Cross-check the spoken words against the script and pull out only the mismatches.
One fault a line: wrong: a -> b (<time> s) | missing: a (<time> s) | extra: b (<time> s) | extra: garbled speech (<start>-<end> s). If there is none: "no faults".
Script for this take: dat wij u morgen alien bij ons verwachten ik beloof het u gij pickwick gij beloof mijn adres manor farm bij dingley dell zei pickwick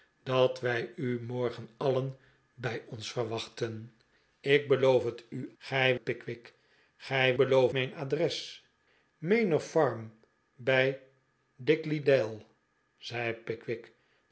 no faults